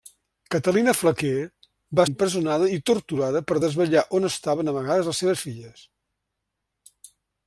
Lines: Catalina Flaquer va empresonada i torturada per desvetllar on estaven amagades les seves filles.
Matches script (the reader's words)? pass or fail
pass